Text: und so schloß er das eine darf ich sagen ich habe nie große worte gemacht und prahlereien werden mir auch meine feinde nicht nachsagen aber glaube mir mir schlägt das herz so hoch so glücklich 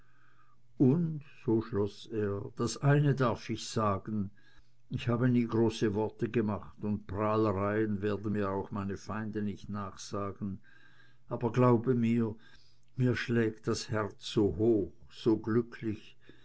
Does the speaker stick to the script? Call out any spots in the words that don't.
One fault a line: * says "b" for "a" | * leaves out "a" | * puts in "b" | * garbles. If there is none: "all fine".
all fine